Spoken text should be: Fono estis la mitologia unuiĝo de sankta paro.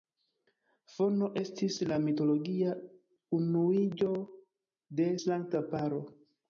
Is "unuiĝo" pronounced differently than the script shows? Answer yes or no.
no